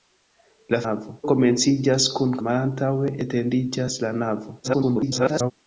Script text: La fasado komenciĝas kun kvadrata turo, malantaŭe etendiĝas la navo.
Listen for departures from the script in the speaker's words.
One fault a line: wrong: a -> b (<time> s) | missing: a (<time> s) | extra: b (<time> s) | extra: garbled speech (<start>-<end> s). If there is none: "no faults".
wrong: fasado -> navo (0.8 s)
missing: kvadrata turo (2.4 s)
extra: garbled speech (4.6-5.5 s)